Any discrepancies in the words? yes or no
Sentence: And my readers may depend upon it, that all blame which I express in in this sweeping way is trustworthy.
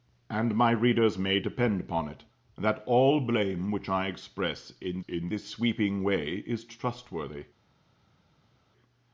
no